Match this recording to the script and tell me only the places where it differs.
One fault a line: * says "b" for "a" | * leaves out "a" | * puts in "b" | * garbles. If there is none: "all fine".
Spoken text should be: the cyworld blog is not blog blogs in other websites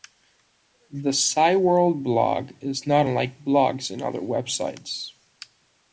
* says "unlike" for "blog"